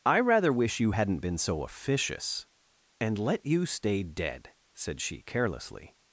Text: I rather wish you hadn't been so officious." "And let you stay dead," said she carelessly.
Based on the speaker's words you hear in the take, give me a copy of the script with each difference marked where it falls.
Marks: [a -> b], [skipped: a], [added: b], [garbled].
I rather wish you hadn't been so officious." "And let you stay dead," said she carelessly.